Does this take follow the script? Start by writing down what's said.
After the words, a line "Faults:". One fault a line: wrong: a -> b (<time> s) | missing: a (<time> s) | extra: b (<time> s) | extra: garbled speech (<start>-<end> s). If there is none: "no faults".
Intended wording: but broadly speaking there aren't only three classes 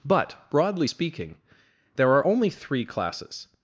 but broadly speaking there are only three classes
Faults:
wrong: aren't -> are (2.1 s)